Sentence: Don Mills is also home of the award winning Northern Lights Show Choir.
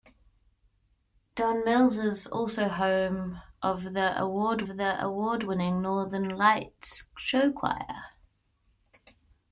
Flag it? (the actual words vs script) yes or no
yes